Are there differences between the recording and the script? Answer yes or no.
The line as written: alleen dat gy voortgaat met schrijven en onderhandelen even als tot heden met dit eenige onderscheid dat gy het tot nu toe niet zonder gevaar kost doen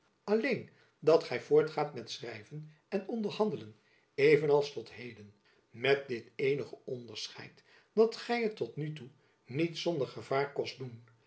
no